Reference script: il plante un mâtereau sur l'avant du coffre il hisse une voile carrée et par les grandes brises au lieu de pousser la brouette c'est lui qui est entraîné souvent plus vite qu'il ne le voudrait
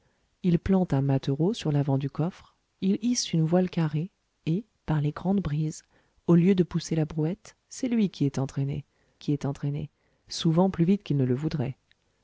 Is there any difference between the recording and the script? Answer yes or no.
yes